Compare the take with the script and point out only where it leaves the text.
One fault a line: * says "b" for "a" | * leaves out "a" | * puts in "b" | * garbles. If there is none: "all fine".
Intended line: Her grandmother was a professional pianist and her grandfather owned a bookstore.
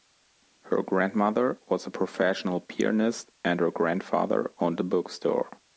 all fine